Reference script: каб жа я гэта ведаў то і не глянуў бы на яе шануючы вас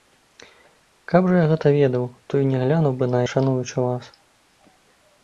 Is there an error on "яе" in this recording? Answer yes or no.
yes